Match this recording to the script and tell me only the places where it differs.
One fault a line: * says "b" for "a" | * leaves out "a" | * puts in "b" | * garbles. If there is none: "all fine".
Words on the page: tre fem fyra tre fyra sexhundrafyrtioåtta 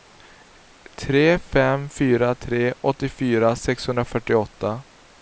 * says "åttiofyra" for "fyra"